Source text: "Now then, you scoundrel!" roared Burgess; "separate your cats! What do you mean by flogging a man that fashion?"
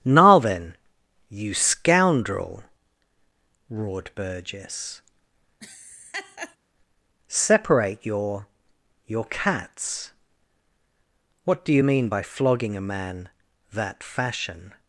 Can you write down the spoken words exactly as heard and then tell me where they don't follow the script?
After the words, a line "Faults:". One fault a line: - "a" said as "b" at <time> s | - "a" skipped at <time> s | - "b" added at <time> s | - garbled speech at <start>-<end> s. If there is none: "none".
"Now then, you scoundrel!" roared Burgess; "separate your your cats! What do you mean by flogging a man that fashion?"
Faults:
- "your" added at 9.1 s